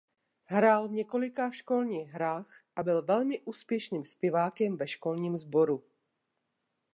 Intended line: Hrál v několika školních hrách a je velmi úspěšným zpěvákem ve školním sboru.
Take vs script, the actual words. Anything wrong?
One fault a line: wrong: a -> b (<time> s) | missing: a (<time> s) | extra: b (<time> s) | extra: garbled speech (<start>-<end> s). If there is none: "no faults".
wrong: je -> byl (2.8 s)